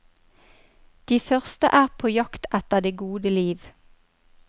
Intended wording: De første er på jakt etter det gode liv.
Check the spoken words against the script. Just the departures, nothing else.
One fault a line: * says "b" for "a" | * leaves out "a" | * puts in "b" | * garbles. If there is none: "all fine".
all fine